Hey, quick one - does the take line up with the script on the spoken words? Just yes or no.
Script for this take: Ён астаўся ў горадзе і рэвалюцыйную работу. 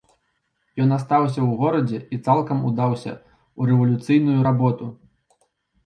no